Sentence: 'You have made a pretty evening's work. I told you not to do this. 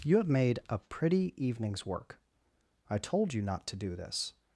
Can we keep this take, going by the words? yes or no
yes